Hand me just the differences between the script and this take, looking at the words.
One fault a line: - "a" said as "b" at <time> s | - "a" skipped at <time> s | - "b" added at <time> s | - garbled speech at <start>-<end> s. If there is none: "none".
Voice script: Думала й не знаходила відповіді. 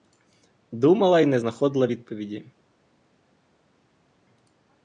none